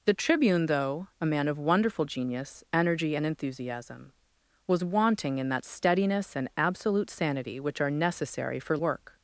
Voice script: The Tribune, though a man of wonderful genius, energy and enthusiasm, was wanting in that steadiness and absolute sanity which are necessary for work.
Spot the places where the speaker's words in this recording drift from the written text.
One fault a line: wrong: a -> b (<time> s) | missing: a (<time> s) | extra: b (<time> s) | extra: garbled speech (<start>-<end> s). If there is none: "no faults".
no faults